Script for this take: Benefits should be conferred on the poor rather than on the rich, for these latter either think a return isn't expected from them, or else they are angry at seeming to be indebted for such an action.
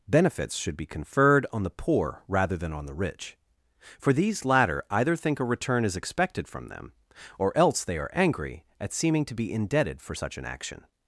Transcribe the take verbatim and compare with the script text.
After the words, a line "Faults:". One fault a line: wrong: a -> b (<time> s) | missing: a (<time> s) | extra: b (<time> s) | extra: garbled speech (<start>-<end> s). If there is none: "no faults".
Benefits should be conferred on the poor rather than on the rich, for these latter either think a return is expected from them, or else they are angry at seeming to be indebted for such an action.
Faults:
wrong: isn't -> is (5.8 s)